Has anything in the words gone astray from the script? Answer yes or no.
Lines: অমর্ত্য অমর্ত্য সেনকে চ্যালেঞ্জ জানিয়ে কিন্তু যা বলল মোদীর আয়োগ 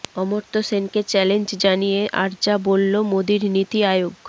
yes